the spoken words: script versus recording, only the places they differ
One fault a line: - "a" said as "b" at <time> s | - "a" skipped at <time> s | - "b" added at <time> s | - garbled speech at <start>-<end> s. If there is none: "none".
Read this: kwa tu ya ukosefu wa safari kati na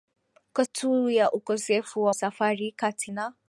none